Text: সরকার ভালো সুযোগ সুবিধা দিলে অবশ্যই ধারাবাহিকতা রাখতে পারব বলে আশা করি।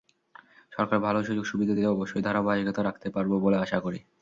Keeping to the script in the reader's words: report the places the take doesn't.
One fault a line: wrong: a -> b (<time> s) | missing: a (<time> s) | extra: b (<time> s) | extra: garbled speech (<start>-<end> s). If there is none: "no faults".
no faults